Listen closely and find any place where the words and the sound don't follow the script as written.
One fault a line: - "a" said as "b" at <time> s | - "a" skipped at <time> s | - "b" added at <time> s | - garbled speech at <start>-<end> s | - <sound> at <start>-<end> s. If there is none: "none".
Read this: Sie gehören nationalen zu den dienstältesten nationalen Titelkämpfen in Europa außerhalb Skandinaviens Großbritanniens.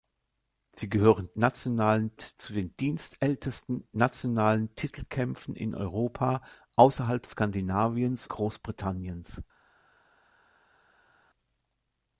none